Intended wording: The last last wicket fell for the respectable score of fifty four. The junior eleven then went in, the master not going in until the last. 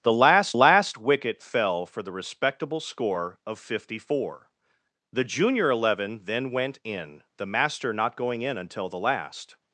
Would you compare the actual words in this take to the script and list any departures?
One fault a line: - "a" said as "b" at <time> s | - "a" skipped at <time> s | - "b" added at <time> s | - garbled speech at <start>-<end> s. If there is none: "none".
none